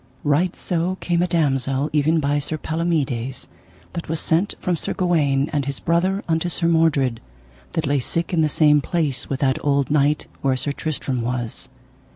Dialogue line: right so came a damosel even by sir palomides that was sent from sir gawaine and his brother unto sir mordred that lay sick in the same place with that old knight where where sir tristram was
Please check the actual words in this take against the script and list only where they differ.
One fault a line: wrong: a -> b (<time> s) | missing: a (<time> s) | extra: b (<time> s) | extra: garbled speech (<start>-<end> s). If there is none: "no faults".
missing: where (10.5 s)